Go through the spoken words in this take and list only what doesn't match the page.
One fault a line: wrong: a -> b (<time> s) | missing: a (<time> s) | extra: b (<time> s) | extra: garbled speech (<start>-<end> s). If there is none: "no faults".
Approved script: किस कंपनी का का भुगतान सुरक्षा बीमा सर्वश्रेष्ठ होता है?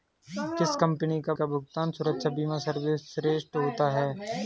no faults